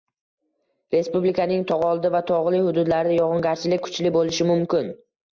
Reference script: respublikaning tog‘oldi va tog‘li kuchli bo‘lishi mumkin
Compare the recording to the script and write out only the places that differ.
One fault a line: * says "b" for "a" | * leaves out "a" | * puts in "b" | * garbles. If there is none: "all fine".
* puts in "hududlarida yog‘ingarchilik"